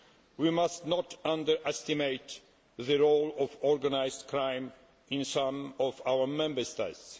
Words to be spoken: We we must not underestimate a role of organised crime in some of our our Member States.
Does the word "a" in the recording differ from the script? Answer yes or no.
yes